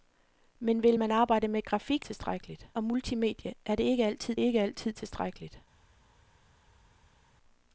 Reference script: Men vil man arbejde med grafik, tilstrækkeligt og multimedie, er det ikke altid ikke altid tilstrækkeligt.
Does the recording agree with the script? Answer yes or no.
yes